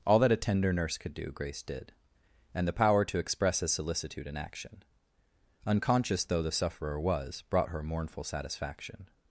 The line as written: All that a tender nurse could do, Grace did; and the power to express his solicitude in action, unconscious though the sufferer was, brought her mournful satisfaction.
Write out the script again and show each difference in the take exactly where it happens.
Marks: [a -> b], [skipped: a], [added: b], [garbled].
All that a tender nurse could do, Grace did; and the power to express his solicitude in action, unconscious though the sufferer was, brought her mournful satisfaction.